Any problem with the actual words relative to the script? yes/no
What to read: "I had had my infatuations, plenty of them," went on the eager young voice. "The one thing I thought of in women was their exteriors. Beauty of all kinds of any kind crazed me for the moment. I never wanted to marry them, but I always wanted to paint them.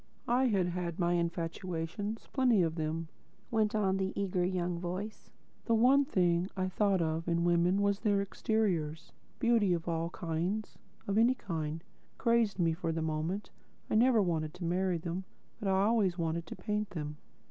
no